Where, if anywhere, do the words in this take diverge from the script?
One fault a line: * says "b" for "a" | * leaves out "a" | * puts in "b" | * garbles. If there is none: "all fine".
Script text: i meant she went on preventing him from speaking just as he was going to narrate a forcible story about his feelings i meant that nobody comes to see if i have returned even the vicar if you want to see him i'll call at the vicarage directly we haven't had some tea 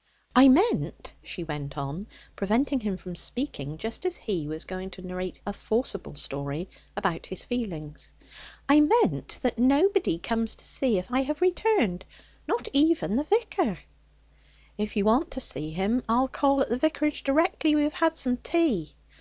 * puts in "not"
* says "have" for "haven't"